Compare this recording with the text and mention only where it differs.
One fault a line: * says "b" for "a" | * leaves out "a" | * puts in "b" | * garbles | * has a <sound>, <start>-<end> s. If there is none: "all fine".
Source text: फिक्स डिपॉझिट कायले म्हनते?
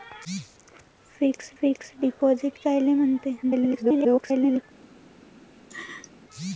* puts in "फिक्स"
* garbles
* has a laugh, 5.7-6.1 s